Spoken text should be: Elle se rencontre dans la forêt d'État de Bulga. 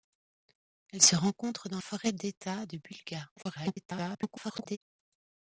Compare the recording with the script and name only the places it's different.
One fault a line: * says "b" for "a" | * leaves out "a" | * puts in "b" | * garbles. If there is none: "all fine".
* leaves out "la"
* garbles